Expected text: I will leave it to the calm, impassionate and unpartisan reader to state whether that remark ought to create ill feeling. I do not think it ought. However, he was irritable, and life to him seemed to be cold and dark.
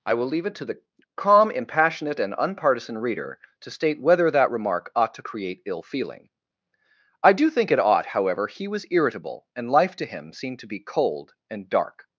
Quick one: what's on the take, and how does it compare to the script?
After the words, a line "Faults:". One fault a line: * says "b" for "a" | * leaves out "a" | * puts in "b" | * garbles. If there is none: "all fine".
I will leave it to the calm, impassionate and unpartisan reader to state whether that remark ought to create ill feeling. I do think it ought. However, he was irritable, and life to him seemed to be cold and dark.
Faults:
* leaves out "not"